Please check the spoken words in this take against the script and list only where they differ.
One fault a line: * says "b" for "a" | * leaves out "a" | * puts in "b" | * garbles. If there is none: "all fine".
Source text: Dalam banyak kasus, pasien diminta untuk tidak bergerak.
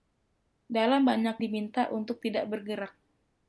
* leaves out "kasus pasien"